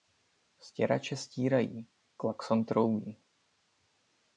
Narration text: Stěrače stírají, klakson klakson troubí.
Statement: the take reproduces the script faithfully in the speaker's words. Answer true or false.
false